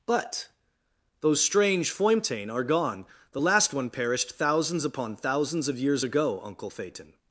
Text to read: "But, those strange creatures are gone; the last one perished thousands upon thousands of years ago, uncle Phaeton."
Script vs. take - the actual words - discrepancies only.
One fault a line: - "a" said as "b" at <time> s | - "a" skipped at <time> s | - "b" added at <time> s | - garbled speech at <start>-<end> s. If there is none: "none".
- "creatures" said as "foimtain" at 1.9 s